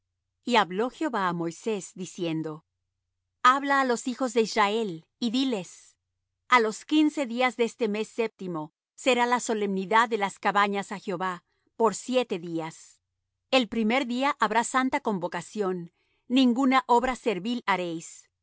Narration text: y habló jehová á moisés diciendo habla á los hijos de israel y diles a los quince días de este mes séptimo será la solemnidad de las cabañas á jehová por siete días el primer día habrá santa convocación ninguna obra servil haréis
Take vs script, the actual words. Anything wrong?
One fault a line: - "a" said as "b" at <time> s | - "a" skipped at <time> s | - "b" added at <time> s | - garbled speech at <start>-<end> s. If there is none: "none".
none